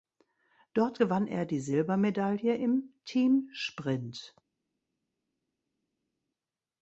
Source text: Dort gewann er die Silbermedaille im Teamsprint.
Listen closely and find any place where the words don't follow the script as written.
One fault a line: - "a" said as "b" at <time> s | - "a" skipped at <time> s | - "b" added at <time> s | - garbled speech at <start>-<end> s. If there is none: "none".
none